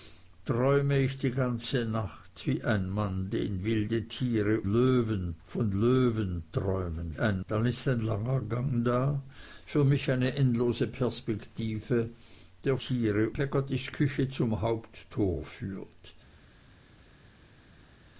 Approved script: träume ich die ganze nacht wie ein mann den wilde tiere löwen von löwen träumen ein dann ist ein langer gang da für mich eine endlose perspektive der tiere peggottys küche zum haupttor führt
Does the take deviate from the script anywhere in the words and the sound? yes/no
no